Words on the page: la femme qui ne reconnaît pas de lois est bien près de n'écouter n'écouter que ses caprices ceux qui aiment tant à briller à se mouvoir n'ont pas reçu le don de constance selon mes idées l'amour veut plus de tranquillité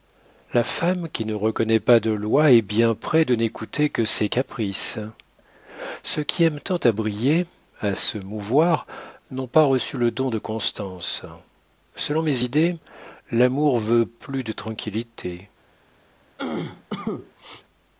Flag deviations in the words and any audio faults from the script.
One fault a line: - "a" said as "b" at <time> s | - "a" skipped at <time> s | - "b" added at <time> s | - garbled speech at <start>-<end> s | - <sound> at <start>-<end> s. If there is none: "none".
- "n'écouter" skipped at 3.9 s
- cough at 16.4-17.6 s